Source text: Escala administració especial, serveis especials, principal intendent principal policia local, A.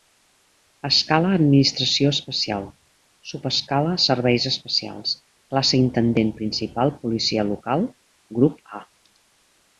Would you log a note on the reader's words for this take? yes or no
yes